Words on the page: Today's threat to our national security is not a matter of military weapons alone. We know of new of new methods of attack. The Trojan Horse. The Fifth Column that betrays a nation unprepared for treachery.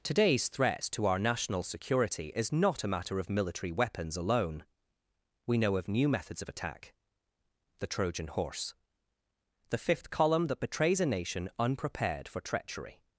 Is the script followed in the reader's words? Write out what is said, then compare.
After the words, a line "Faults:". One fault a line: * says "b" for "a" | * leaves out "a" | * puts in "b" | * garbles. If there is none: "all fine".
Today's threat to our national security is not a matter of military weapons alone. We know of new methods of attack. The Trojan Horse. The Fifth Column that betrays a nation unprepared for treachery.
Faults:
* leaves out "of new"